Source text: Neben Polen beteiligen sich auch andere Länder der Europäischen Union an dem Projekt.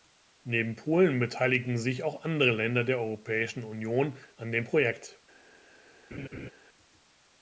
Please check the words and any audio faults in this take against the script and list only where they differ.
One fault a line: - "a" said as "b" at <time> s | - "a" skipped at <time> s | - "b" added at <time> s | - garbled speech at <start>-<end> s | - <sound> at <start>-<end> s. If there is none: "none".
- laugh at 6.1-6.5 s